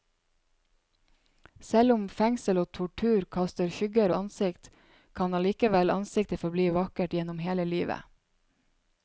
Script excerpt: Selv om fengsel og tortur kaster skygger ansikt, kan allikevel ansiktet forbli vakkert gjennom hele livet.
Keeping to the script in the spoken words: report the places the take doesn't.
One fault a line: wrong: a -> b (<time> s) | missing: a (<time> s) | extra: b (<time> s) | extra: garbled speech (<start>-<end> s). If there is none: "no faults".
no faults